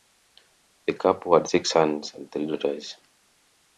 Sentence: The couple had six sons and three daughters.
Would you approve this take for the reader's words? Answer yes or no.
yes